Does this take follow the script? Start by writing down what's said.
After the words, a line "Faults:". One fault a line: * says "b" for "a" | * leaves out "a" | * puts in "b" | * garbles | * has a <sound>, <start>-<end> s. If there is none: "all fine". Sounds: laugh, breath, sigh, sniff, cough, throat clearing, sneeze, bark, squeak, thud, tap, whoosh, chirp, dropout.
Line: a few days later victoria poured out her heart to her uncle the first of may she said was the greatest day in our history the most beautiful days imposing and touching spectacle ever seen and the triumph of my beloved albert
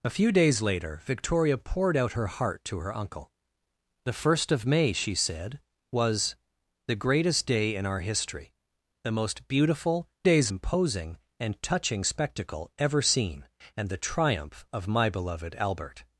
a few days later victoria poured out her heart to her uncle the first of may she said was the greatest day in our history the most beautiful days imposing and touching spectacle ever seen and the triumph of my beloved albert
Faults:
all fine